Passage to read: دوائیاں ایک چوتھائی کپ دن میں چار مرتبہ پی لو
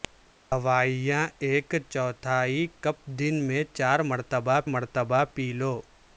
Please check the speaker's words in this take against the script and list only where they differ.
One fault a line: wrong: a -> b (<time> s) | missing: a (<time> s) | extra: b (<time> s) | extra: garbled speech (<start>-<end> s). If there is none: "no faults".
extra: مرتبہ (4.7 s)